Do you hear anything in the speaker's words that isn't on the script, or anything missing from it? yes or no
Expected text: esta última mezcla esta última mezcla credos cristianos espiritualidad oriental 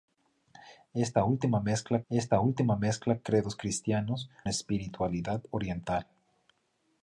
no